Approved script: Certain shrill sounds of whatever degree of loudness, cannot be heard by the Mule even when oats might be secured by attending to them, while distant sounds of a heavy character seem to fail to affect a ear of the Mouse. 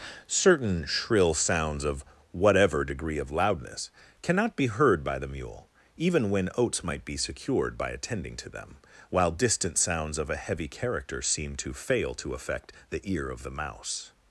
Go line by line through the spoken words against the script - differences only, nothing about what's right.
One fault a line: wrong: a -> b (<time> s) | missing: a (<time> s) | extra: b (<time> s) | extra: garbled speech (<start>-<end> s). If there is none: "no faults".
wrong: a -> the (12.9 s)